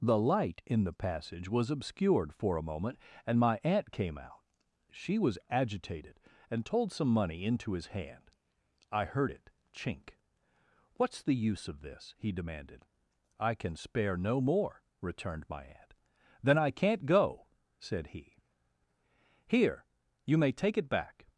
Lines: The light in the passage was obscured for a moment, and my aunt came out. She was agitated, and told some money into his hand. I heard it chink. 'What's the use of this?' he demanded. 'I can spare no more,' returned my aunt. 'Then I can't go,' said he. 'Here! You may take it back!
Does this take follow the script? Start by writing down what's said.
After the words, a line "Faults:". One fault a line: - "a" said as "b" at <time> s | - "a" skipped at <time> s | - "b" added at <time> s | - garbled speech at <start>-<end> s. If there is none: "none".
The light in the passage was obscured for a moment, and my aunt came out. She was agitated, and told some money into his hand. I heard it chink. 'What's the use of this?' he demanded. 'I can spare no more,' returned my aunt. 'Then I can't go,' said he. 'Here! You may take it back!
Faults:
none